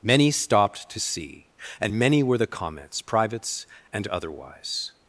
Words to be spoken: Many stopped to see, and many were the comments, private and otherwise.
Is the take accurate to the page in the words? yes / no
no